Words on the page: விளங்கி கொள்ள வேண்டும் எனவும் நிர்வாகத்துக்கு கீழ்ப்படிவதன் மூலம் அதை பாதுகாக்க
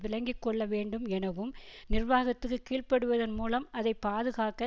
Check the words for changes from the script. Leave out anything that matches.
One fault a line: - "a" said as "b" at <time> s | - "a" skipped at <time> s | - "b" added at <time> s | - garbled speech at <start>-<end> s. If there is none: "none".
none